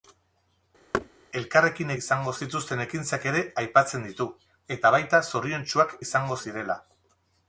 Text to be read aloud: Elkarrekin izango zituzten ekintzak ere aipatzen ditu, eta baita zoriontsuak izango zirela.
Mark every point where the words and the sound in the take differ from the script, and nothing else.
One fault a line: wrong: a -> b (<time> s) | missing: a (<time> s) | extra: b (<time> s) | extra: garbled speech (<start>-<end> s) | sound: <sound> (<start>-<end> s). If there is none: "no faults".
sound: thud (0.9-1.1 s)